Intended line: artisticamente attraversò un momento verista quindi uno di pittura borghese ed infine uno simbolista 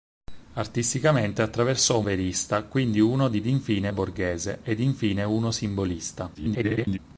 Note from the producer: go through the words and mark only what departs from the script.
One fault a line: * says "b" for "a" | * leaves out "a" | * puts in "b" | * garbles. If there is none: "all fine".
* leaves out "momento"
* says "infine" for "pittura"
* garbles